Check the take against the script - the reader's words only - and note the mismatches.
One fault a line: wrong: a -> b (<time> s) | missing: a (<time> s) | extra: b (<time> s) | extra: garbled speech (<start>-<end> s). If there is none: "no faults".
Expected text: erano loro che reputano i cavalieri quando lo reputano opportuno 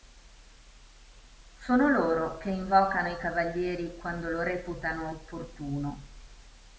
wrong: erano -> sono (1.6 s)
wrong: reputano -> invocano (2.5 s)